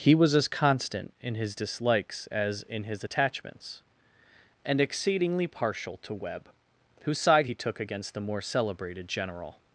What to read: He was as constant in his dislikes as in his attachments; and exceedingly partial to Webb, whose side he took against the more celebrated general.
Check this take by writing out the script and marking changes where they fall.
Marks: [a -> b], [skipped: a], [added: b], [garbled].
He was as constant in his dislikes as in his attachments; and exceedingly partial to Webb, whose side he took against the more celebrated general.